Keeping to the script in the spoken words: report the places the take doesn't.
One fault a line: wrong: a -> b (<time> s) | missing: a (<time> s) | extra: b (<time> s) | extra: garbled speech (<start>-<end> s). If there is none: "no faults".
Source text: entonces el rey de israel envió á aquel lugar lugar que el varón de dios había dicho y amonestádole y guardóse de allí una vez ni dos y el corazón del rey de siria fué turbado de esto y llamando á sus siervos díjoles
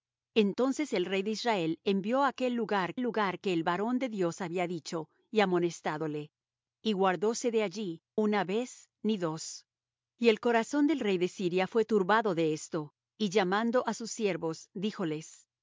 no faults